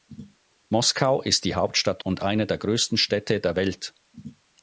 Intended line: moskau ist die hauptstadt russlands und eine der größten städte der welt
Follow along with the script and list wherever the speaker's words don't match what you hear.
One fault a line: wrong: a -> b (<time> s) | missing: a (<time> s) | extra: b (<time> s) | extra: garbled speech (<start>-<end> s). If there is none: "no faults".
missing: russlands (2.0 s)